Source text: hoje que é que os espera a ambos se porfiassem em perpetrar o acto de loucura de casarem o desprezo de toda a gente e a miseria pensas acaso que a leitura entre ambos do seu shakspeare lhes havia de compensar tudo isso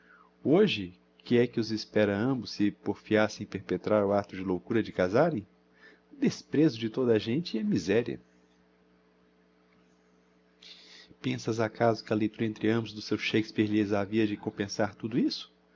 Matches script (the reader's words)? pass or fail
pass